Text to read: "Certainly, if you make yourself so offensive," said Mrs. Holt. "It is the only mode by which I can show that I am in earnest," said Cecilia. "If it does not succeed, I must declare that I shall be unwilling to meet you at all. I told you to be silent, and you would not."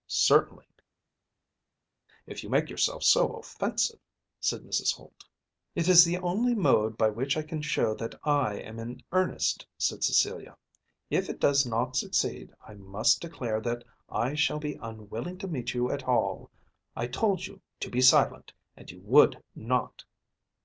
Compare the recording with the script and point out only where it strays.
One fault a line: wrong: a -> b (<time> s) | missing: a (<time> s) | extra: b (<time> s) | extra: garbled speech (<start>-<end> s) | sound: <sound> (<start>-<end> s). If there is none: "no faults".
no faults